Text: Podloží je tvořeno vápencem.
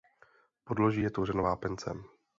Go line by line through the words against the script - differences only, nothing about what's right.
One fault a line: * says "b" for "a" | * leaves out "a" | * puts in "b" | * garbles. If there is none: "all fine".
all fine